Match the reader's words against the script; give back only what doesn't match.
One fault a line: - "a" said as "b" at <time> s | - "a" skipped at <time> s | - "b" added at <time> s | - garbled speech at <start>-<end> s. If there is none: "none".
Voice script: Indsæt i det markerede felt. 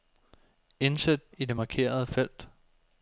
none